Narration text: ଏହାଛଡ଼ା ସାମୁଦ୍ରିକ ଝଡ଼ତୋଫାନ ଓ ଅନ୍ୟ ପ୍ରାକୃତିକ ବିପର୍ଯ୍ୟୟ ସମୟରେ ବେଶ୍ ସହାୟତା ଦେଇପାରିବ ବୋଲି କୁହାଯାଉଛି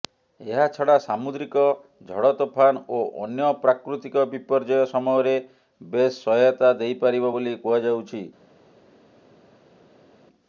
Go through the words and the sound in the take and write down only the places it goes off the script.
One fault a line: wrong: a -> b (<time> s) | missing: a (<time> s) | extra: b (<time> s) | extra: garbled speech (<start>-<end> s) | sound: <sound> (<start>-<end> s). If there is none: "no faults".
no faults